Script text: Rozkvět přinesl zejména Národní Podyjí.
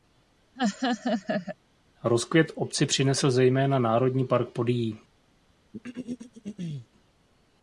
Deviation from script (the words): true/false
true